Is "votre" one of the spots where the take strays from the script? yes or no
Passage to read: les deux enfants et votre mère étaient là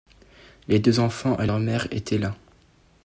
yes